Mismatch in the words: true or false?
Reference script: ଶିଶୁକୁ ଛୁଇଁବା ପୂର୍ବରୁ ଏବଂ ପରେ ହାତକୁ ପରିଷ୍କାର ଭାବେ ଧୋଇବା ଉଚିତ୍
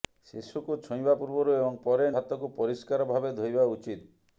false